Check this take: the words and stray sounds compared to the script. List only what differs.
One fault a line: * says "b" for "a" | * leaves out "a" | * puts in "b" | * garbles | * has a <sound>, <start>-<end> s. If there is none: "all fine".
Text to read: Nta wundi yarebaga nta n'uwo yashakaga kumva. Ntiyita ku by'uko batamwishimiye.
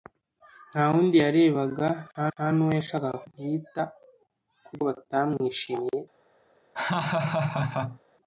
* puts in "nta"
* leaves out "kumva"
* leaves out "by'uko"
* has a laugh, 6.7-8.0 s